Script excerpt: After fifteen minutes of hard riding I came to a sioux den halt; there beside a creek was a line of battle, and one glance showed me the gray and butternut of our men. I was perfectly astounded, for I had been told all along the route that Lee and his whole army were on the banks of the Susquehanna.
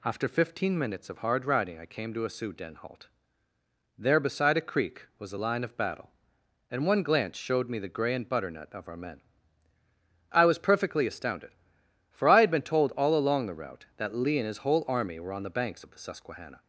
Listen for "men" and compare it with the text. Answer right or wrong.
right